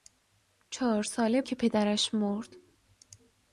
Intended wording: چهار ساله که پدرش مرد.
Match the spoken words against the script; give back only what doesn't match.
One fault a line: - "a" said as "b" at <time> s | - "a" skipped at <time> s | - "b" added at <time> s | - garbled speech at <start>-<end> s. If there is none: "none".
none